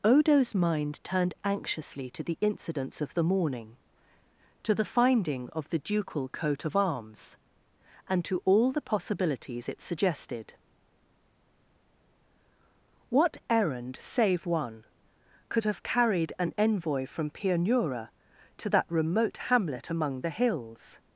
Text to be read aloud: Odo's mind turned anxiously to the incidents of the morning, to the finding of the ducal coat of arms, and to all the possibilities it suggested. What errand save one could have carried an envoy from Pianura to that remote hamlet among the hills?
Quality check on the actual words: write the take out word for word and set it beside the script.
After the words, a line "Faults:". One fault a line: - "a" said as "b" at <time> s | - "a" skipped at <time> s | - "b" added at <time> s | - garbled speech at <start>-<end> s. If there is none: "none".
Odo's mind turned anxiously to the incidents of the morning, to the finding of the ducal coat of arms, and to all the possibilities it suggested. What errand save one could have carried an envoy from Pianura to that remote hamlet among the hills?
Faults:
none